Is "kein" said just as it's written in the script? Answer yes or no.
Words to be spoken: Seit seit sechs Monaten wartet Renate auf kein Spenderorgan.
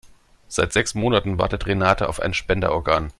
no